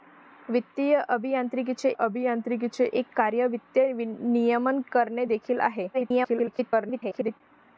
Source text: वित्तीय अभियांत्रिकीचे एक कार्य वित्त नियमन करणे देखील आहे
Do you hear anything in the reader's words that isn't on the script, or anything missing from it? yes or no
yes